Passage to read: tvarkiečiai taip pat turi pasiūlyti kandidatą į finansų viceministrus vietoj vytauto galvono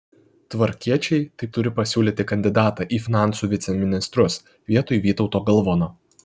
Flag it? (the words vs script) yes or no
yes